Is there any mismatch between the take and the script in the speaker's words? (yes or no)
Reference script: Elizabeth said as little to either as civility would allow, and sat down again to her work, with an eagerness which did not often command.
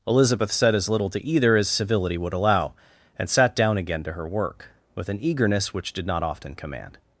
no